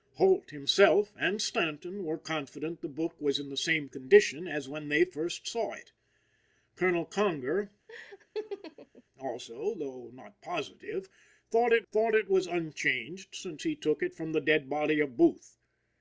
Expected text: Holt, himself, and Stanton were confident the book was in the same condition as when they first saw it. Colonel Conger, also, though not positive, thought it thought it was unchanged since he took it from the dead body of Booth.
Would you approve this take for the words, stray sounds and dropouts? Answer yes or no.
no